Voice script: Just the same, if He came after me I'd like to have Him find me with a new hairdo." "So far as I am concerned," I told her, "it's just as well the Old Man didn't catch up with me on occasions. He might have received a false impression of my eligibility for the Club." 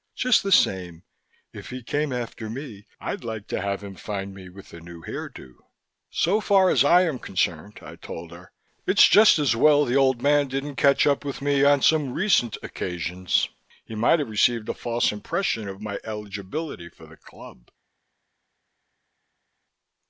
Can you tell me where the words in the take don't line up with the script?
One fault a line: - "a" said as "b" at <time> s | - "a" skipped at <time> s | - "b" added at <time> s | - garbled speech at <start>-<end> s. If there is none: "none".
- "some recent" added at 11.8 s